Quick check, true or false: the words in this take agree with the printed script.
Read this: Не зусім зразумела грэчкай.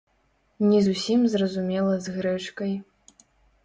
false